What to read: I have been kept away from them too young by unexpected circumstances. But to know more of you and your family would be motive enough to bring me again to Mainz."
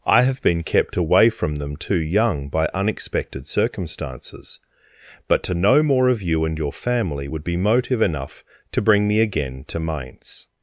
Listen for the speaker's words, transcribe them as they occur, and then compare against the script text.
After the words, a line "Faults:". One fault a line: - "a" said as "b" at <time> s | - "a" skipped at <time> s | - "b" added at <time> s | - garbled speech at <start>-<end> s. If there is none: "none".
I have been kept away from them too young by unexpected circumstances. But to know more of you and your family would be motive enough to bring me again to Mainz."
Faults:
none